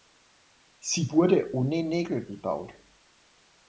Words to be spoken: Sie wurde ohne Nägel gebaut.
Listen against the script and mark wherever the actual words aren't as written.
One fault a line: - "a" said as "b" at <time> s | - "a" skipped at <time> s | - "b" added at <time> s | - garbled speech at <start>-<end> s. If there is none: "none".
none